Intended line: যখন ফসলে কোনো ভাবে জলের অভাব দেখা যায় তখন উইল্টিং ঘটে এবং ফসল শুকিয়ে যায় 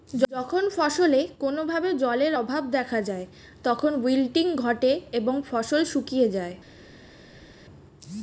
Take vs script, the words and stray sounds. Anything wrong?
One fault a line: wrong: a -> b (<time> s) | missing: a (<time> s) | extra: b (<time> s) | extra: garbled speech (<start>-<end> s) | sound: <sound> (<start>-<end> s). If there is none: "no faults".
no faults